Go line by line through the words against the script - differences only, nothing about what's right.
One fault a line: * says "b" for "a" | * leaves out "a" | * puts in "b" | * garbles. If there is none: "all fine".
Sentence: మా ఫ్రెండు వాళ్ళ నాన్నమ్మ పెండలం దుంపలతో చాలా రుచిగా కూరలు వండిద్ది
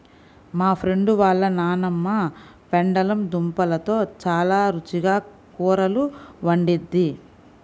all fine